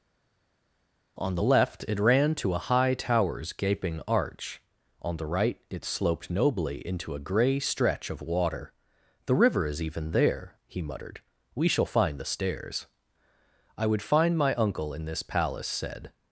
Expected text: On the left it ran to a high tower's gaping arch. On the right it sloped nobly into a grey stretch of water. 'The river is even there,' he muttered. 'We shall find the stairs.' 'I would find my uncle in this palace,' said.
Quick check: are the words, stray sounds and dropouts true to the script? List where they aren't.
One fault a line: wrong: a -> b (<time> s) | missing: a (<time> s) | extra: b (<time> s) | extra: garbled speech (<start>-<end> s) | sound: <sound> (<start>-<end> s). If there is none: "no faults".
no faults